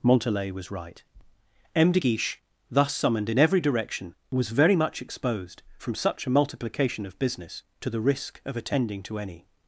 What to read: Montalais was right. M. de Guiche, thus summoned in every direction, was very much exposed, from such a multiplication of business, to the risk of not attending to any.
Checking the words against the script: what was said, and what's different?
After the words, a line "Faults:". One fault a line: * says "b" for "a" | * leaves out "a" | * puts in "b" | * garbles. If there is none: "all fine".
Montalais was right. M. de Guiche, thus summoned in every direction, was very much exposed, from such a multiplication of business, to the risk of attending to any.
Faults:
* leaves out "not"